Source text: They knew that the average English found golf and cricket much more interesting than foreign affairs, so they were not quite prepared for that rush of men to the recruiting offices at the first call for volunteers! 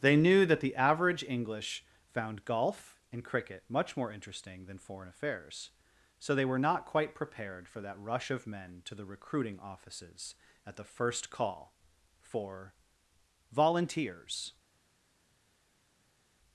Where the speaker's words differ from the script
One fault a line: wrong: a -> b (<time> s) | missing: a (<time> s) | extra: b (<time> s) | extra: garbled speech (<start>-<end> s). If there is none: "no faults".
no faults